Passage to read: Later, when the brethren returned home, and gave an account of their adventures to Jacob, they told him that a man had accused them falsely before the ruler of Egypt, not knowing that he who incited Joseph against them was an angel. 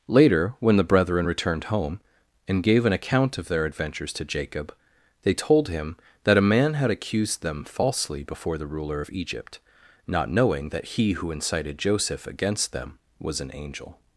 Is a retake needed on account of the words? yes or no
no